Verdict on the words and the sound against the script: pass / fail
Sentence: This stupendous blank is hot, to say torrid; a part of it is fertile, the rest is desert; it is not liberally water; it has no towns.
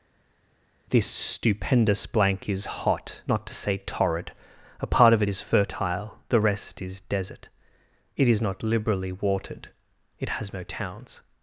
fail